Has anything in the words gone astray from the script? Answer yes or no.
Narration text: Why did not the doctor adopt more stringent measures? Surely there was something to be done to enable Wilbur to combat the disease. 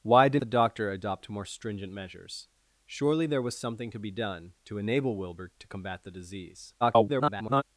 yes